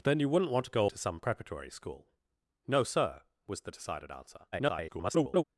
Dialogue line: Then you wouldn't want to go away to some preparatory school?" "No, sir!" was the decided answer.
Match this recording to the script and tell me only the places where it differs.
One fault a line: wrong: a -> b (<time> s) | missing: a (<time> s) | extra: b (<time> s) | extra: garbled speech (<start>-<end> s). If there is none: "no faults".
missing: away (0.8 s)
extra: garbled speech (4.5-5.4 s)